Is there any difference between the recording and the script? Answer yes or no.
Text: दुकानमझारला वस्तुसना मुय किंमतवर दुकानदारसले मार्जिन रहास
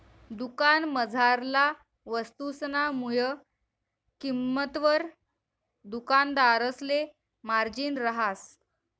no